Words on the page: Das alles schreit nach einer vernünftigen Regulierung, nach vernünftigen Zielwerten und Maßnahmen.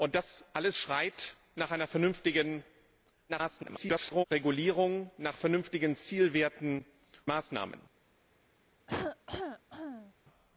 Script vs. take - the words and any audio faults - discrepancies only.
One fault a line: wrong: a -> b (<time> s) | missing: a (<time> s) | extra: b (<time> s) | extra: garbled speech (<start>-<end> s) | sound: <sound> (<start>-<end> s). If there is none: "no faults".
extra: garbled speech (3.3-4.2 s)
missing: und (6.8 s)
sound: cough (8.9-10.1 s)